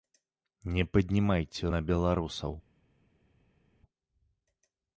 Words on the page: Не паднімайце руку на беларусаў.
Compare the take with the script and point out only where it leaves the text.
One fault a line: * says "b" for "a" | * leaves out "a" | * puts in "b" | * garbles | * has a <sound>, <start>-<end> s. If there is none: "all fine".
* leaves out "руку"